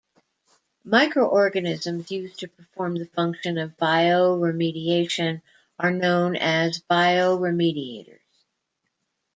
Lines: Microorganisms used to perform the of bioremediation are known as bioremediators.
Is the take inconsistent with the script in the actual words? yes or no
yes